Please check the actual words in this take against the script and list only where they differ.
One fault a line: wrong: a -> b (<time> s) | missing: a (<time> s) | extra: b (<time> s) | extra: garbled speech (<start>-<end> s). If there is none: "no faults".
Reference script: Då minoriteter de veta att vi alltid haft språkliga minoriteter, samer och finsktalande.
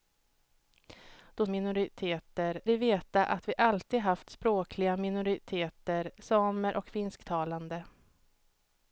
no faults